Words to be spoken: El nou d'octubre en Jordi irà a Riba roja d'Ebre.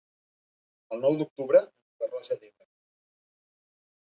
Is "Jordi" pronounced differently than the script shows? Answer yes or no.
yes